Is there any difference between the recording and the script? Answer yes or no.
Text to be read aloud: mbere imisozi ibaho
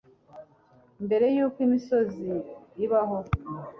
yes